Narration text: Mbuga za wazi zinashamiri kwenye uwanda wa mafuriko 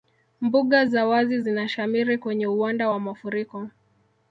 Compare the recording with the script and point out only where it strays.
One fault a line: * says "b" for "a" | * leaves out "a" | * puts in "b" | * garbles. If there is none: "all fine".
all fine